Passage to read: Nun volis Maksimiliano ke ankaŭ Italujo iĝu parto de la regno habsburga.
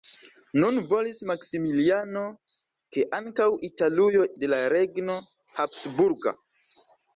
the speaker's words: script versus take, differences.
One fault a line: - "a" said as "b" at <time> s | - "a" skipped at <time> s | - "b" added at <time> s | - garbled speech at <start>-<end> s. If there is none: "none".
- "iĝu parto" skipped at 4.2 s